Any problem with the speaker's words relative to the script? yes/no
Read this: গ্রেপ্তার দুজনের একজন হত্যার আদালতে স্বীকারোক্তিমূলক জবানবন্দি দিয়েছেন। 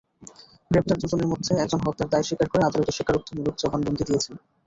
yes